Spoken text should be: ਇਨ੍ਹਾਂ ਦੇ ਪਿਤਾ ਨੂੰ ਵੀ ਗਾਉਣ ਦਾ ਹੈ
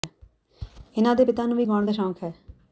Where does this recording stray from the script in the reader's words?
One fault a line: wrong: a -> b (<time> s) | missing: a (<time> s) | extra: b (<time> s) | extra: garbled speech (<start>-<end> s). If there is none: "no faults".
extra: ਸ਼ੌਕ (1.9 s)